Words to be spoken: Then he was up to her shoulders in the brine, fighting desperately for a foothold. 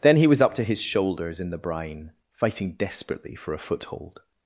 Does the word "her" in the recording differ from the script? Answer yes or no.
yes